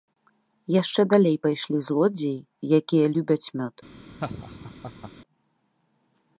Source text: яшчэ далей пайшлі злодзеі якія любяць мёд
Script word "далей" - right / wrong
right